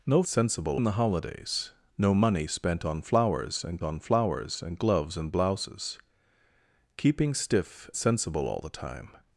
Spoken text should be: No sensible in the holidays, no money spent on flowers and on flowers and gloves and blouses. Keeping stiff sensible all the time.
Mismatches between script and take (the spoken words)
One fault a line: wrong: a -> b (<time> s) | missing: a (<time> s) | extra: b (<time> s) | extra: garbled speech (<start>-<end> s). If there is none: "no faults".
no faults